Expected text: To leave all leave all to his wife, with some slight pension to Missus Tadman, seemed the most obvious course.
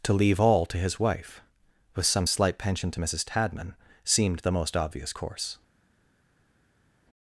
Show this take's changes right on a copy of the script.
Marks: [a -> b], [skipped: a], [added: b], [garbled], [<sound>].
To leave all [skipped: leave all] to his wife, with some slight pension to Missus Tadman, seemed the most obvious course.